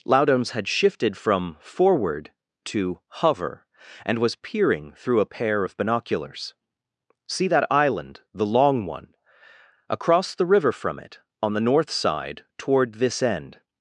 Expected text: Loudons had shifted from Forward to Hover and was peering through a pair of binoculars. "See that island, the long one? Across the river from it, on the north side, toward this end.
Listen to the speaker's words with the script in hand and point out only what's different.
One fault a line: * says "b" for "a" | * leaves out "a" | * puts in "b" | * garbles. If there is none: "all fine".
all fine